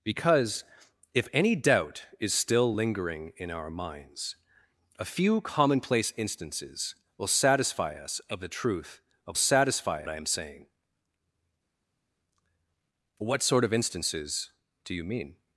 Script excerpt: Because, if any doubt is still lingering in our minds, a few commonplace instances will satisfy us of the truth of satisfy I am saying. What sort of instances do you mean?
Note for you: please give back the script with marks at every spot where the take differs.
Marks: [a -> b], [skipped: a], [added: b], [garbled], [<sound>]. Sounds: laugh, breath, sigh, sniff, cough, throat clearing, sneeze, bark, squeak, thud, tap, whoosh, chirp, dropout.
Because, if any doubt is still lingering in our minds, a few commonplace instances will satisfy us of the truth of satisfy I am saying. What sort of instances do you mean?